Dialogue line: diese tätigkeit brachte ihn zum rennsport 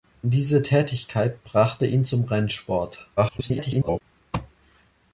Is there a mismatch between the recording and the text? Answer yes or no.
yes